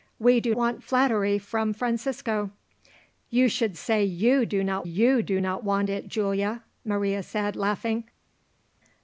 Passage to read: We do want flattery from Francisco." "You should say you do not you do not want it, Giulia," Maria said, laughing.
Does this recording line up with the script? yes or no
yes